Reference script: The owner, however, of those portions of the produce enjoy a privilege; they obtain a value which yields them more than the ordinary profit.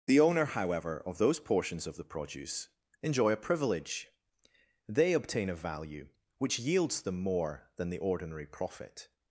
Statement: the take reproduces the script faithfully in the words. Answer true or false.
true